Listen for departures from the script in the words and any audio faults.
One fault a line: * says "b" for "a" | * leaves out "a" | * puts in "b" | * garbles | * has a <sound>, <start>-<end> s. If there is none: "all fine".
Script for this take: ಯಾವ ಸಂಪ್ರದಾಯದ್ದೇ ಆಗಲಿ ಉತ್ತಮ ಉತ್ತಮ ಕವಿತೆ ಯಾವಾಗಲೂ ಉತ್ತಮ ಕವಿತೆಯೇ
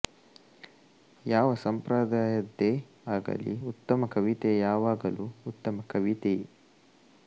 * leaves out "ಉತ್ತಮ"